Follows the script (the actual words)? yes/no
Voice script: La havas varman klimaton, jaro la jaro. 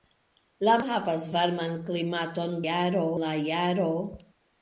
yes